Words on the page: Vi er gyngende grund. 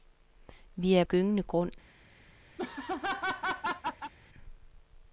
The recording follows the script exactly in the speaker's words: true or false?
true